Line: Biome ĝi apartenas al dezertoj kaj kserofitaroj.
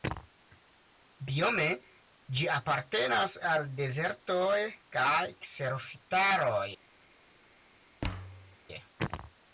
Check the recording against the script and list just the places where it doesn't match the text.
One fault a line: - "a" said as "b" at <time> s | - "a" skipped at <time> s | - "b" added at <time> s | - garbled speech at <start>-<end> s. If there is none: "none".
none